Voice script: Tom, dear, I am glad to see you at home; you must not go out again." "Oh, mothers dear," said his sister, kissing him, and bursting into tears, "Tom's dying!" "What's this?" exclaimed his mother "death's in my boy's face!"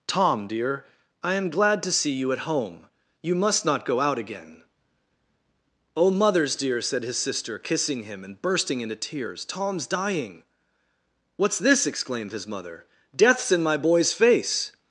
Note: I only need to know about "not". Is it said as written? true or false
true